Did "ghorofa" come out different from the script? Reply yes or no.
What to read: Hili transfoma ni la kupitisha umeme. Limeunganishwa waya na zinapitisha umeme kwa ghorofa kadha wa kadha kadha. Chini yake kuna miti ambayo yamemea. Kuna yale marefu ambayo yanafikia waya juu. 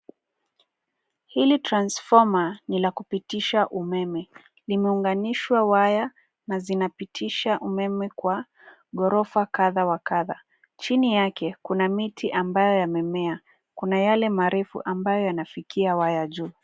no